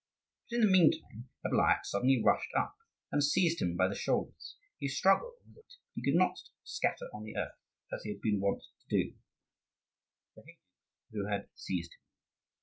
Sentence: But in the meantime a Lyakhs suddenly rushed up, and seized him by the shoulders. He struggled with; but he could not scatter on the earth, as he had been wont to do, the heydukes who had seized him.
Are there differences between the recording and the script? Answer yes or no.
no